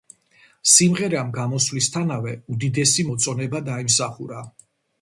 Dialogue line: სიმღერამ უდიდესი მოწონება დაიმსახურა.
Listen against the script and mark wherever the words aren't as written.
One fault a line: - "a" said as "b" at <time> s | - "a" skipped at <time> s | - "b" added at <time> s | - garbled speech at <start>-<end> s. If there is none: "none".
- "გამოსვლისთანავე" added at 1.4 s